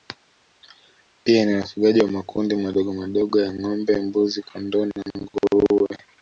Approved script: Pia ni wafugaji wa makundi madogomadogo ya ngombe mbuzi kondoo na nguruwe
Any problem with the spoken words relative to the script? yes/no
no